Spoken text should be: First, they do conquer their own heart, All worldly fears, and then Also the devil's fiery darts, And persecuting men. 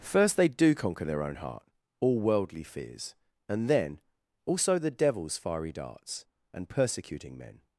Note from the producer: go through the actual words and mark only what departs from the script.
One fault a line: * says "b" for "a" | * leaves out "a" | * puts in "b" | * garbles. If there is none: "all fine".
all fine